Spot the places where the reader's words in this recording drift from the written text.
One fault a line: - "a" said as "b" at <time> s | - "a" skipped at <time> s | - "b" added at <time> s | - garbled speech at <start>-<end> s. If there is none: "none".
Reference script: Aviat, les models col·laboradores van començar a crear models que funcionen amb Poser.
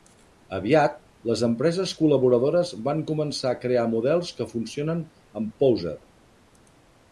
- "models" said as "empreses" at 1.5 s